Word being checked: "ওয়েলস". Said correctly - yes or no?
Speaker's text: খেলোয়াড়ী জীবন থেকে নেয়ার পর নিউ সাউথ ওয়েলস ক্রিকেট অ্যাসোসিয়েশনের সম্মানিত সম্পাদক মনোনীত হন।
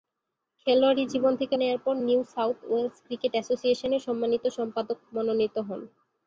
yes